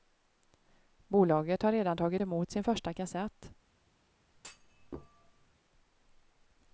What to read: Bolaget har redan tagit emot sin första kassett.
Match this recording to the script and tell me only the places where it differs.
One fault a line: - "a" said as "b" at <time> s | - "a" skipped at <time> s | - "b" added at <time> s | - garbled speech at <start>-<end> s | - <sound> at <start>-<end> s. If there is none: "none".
- thud at 4.3-5.5 s